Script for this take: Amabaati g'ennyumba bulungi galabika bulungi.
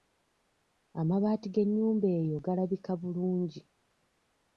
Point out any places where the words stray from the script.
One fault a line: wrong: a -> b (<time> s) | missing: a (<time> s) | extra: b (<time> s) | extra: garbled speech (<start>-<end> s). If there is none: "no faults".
wrong: bulungi -> eyo (2.2 s)